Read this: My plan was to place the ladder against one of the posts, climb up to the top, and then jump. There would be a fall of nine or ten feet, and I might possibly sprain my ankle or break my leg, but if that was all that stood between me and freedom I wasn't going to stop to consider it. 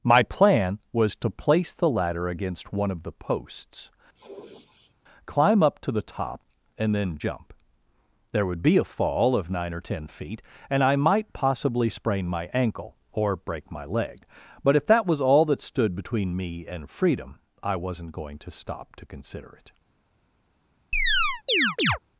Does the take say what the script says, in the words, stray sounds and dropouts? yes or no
no